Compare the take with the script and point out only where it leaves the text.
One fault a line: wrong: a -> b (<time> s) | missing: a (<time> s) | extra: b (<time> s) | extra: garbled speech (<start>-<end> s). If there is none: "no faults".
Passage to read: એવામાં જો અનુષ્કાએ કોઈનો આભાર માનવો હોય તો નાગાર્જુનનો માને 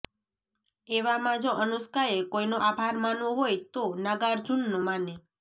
no faults